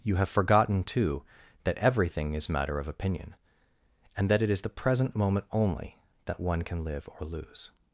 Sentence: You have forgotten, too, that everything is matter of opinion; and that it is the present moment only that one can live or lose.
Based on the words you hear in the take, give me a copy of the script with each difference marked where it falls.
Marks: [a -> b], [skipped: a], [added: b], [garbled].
You have forgotten, too, that everything is matter of opinion; and that it is the present moment only that one can live or lose.